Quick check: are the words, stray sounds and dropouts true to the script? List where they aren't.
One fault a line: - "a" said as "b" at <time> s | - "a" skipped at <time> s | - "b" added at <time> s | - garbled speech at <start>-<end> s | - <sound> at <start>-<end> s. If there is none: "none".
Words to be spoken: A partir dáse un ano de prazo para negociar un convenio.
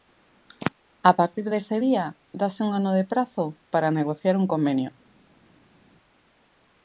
- "dese día" added at 1.5 s